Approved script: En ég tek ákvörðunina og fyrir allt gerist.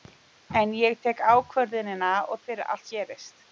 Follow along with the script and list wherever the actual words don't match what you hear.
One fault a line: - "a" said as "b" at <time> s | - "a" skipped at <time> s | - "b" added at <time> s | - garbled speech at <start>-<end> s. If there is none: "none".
none